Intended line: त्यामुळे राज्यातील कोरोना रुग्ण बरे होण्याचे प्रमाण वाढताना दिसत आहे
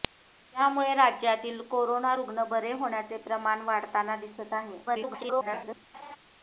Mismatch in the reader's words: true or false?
true